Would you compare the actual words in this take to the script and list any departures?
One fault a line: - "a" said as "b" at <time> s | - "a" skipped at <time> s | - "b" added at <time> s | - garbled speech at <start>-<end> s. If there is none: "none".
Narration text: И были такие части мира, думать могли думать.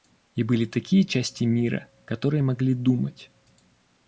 - "думать" said as "которые" at 2.0 s